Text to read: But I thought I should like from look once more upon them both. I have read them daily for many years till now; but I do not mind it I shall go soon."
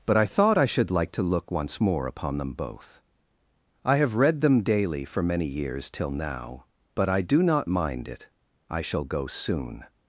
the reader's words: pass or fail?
fail